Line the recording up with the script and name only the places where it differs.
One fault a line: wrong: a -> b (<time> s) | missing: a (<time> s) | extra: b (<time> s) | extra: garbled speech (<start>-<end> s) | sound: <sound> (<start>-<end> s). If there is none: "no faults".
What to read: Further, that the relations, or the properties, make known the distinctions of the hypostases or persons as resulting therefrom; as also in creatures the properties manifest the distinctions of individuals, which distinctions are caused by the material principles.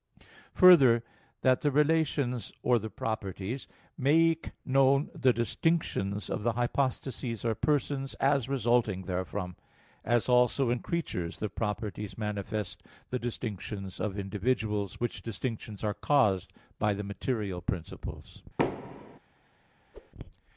sound: thud (18.6-19.2 s)
sound: whoosh (19.9-20.1 s)